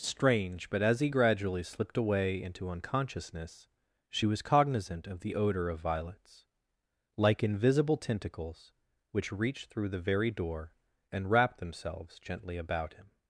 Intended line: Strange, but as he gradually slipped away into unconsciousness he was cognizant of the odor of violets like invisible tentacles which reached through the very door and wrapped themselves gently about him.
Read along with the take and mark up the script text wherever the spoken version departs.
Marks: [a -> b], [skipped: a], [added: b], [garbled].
Strange, but as he gradually slipped away into unconsciousness [he -> she] was cognizant of the odor of violets like invisible tentacles which reached through the very door and wrapped themselves gently about him.